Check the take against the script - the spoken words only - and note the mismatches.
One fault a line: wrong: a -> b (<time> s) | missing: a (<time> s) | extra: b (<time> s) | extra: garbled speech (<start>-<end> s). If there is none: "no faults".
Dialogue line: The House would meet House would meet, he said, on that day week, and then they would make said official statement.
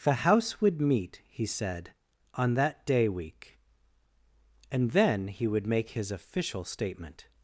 missing: House would meet (1.2 s)
wrong: they -> he (5.3 s)
wrong: said -> his (5.9 s)